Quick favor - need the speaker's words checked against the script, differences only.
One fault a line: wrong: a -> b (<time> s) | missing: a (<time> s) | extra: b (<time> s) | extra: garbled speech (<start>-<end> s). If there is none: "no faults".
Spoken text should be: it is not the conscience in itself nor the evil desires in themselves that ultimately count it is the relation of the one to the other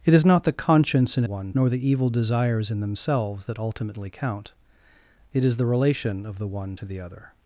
wrong: itself -> one (1.2 s)